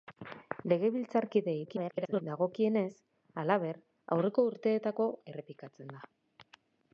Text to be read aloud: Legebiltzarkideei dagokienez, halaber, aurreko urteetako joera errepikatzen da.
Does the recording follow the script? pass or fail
fail